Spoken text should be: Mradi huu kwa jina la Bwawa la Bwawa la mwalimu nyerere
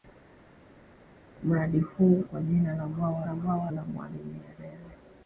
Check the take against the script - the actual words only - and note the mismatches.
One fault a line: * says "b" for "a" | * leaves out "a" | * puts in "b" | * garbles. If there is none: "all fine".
all fine